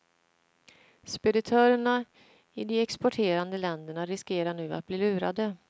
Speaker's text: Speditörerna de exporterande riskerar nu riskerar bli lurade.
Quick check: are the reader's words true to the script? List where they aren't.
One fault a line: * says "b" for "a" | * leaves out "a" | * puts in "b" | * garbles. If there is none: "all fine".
* puts in "i"
* puts in "länderna"
* says "att" for "riskerar"